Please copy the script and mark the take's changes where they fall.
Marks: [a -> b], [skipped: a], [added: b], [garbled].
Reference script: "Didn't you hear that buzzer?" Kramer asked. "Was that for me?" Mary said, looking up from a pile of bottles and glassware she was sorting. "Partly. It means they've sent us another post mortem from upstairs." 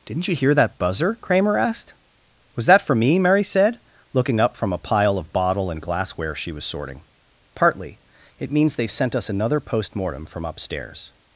"Didn't you hear that buzzer?" Kramer asked. "Was that for me?" Mary said, looking up from a pile of [bottles -> bottle] and glassware she was sorting. "Partly. It means they've sent us another post mortem from upstairs."